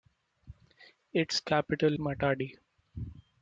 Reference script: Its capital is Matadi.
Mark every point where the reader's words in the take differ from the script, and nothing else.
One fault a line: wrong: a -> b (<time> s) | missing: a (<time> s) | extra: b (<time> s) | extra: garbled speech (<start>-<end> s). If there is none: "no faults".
missing: is (2.0 s)